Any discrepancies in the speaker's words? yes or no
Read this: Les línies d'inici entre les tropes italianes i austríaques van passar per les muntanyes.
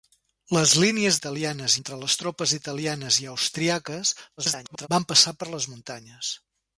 yes